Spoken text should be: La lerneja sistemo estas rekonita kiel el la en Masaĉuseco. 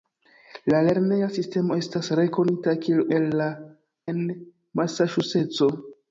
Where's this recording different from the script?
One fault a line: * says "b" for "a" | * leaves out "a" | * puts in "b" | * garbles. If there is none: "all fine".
all fine